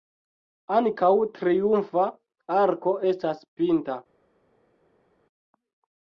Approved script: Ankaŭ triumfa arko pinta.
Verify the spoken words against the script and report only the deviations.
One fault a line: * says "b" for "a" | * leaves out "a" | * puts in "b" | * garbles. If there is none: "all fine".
* puts in "estas"